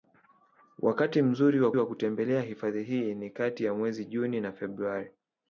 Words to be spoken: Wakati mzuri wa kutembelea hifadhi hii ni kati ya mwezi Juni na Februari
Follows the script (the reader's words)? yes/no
no